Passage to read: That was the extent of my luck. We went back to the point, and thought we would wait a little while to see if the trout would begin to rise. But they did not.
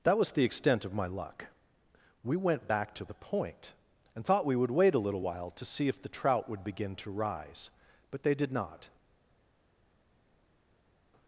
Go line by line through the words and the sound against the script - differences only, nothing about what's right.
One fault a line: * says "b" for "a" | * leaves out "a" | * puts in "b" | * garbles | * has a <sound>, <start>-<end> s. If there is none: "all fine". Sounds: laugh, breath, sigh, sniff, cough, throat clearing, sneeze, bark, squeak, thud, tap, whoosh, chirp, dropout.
all fine